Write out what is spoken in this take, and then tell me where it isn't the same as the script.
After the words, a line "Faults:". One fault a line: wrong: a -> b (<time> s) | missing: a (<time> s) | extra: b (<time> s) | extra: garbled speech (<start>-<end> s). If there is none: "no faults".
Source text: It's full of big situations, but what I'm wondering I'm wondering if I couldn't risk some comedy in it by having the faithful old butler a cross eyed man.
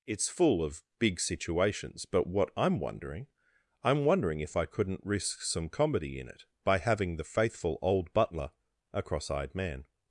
It's full of big situations, but what I'm wondering I'm wondering if I couldn't risk some comedy in it by having the faithful old butler a cross eyed man.
Faults:
no faults